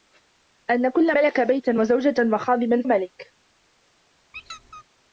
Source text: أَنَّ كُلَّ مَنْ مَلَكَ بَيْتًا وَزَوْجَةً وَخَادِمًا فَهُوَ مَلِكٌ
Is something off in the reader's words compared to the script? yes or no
yes